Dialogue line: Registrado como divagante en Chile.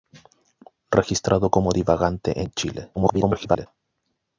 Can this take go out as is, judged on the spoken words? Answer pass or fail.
fail